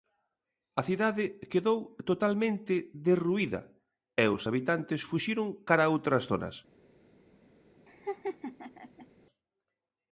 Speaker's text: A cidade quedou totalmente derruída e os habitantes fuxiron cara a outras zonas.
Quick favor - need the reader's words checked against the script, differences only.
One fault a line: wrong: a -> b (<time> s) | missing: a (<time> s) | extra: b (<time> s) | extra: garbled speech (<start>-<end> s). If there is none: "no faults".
no faults